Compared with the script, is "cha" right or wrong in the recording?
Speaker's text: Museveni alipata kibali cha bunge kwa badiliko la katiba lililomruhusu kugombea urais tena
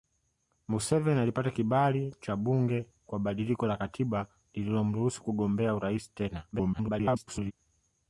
right